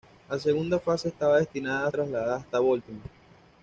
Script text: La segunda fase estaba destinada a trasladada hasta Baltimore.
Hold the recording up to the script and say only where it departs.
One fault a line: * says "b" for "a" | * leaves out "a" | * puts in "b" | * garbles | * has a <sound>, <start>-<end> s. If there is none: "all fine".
all fine